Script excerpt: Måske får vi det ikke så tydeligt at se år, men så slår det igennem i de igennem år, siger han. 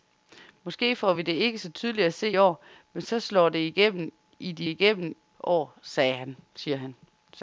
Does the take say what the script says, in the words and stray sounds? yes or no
yes